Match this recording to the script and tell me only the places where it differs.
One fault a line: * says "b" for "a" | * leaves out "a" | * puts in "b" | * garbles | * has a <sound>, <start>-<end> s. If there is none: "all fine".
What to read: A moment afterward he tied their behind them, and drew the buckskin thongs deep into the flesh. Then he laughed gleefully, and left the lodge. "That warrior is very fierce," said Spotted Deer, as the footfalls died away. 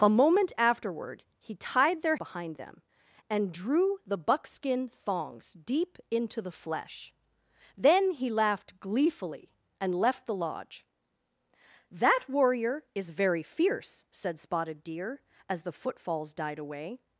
all fine